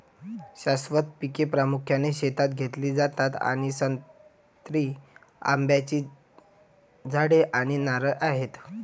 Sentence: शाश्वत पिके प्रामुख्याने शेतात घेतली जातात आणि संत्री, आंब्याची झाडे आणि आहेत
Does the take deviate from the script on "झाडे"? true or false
false